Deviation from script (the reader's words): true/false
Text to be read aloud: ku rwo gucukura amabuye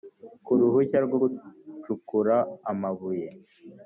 true